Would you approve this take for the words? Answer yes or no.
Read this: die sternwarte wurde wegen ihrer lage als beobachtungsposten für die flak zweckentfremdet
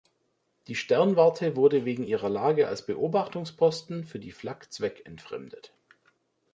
yes